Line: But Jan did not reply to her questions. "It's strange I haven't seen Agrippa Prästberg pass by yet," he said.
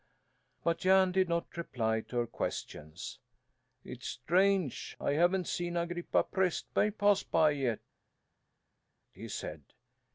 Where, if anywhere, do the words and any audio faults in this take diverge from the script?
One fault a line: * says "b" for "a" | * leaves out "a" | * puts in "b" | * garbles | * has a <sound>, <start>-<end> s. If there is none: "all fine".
all fine